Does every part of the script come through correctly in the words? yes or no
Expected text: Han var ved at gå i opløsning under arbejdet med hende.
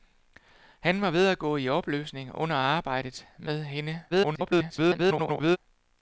no